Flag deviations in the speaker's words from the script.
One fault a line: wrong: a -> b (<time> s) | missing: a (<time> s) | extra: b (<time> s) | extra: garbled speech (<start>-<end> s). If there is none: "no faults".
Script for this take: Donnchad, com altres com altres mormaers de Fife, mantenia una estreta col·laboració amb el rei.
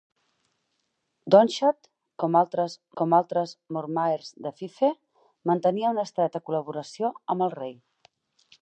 no faults